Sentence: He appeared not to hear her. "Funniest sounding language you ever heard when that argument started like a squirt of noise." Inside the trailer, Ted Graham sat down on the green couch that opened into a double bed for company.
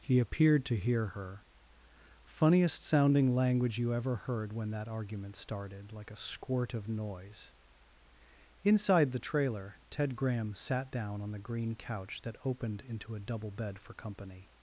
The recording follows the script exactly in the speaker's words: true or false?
false